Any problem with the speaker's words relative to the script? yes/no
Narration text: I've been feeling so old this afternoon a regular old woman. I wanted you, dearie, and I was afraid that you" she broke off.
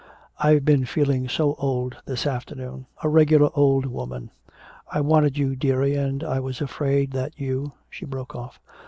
no